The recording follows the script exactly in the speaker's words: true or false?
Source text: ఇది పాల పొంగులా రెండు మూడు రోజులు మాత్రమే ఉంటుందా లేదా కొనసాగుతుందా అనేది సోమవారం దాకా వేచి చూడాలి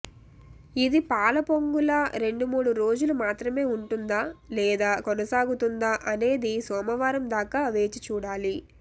true